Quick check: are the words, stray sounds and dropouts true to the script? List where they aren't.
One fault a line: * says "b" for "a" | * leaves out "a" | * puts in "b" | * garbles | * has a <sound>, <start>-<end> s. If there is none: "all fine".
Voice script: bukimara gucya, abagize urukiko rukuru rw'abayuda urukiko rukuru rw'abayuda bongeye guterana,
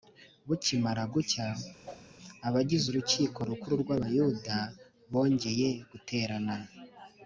* has a whoosh, 1.9-2.1 s
* leaves out "urukiko rukuru rw'abayuda"